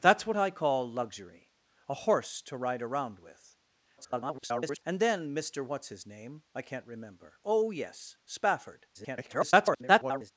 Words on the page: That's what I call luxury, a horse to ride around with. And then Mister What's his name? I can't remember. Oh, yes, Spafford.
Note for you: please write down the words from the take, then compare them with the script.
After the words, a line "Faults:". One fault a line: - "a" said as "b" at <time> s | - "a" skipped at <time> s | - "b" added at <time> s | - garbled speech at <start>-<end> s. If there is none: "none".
That's what I call luxury, a horse to ride around with. [garbled] And then Mister What's his name? I can't remember. Oh, yes, Spafford. [garbled]
Faults:
- garbled speech at 4.0-4.8 s
- garbled speech at 8.9-10.3 s